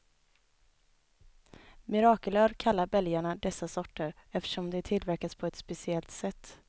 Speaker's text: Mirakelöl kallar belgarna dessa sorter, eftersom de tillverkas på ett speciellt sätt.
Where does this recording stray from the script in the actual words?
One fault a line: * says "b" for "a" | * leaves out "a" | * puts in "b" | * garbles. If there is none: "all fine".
all fine